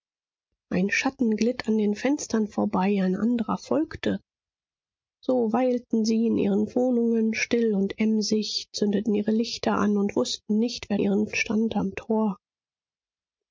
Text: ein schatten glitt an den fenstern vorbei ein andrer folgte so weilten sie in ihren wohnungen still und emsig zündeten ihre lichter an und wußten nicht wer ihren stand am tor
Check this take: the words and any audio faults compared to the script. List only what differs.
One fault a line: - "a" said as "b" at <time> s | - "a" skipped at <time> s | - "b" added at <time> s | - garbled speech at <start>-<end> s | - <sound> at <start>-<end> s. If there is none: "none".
none